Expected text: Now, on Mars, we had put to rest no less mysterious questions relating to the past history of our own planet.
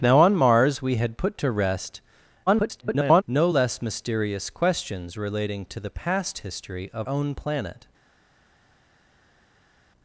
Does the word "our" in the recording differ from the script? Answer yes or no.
yes